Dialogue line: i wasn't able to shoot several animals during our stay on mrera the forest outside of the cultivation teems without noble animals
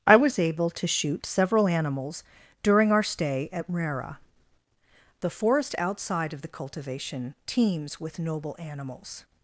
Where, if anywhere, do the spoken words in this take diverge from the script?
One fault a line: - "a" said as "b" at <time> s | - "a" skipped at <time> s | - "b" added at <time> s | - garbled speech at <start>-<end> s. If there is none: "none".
- "wasn't" said as "was" at 0.1 s
- "on" said as "at" at 3.5 s
- "without" said as "with" at 8.0 s